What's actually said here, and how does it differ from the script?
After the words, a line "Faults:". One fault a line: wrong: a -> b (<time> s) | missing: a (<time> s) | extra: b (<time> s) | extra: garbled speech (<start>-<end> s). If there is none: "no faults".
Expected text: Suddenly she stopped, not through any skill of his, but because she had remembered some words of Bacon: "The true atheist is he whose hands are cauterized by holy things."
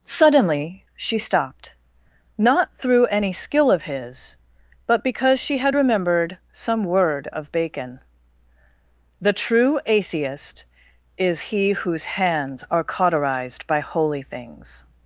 Suddenly she stopped, not through any skill of his, but because she had remembered some word of Bacon: "The true atheist is he whose hands are cauterized by holy things."
Faults:
wrong: words -> word (6.8 s)